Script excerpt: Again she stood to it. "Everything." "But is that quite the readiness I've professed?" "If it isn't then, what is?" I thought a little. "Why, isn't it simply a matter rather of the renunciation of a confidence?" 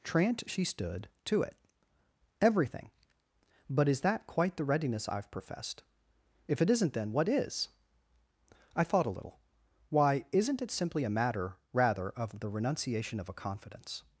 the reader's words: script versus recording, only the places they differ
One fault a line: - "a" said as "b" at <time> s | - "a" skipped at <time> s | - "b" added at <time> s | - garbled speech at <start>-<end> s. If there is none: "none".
- "Again" said as "Trant" at 0.0 s